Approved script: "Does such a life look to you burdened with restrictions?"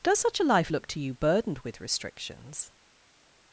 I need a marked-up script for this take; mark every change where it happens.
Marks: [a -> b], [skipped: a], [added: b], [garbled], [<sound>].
"Does such a life look to you burdened with restrictions?"